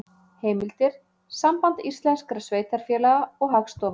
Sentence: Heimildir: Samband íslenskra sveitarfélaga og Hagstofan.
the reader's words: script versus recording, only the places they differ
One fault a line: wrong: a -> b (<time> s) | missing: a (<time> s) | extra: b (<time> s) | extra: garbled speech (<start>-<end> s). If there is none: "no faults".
no faults